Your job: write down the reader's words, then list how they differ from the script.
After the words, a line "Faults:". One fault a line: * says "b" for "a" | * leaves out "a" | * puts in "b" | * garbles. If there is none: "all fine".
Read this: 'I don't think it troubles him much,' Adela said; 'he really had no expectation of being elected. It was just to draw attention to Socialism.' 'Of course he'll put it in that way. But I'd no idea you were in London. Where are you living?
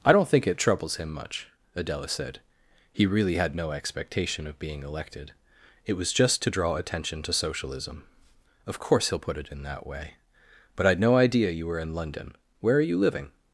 'I don't think it troubles him much,' Adela said; 'he really had no expectation of being elected. It was just to draw attention to Socialism.' 'Of course he'll put it in that way. But I'd no idea you were in London. Where are you living?
Faults:
all fine